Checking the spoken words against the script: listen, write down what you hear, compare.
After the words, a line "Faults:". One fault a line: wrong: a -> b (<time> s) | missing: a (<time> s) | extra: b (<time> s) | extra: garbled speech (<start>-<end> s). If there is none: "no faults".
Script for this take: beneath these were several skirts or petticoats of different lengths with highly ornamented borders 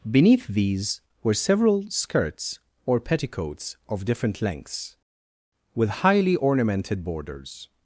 beneath these were several skirts or petticoats of different lengths with highly ornamented borders
Faults:
no faults